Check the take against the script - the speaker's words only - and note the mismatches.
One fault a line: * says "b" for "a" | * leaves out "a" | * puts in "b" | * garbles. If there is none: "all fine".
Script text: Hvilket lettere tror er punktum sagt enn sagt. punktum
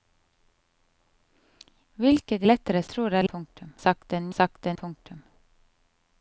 all fine